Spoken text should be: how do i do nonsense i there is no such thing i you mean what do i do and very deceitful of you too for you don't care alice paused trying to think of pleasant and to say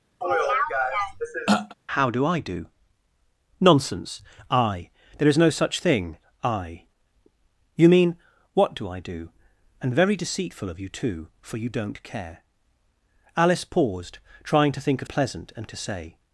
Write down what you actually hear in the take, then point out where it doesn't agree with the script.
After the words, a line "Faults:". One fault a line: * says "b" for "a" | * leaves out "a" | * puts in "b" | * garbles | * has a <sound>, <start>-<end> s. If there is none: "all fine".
how do i do nonsense i there is no such thing i you mean what do i do and very deceitful of you too for you don't care alice paused trying to think of pleasant and to say
Faults:
* has a throat clearing, 0.2-1.7 s